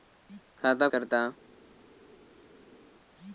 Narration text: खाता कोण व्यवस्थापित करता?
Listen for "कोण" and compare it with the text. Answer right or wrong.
wrong